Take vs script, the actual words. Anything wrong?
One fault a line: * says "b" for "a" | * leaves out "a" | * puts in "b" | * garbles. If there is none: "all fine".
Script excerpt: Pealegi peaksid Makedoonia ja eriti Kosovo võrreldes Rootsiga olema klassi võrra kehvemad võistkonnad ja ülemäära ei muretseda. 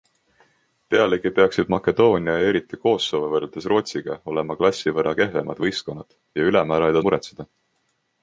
all fine